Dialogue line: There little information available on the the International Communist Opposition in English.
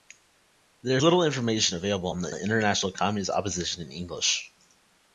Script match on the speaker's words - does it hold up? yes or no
yes